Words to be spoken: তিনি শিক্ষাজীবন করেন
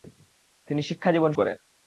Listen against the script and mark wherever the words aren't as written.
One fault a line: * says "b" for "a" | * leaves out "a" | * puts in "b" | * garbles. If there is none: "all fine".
all fine